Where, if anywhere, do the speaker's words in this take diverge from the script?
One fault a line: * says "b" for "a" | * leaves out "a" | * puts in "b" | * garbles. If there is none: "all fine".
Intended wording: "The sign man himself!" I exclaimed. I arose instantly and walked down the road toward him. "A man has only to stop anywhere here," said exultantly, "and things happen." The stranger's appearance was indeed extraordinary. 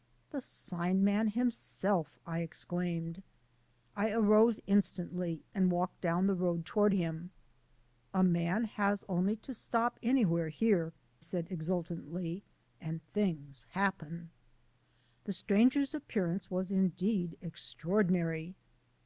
all fine